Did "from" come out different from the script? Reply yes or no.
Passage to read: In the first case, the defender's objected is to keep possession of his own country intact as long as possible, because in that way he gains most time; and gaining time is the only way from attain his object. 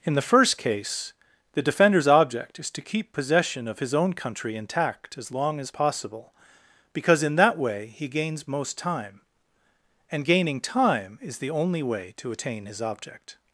yes